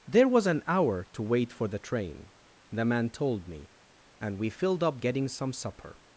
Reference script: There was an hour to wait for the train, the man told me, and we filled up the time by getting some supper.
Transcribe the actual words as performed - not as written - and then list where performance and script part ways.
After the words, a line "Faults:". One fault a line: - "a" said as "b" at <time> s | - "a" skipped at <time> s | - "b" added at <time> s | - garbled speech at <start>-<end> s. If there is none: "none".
There was an hour to wait for the train, the man told me, and we filled up getting some supper.
Faults:
- "the time by" skipped at 5.0 s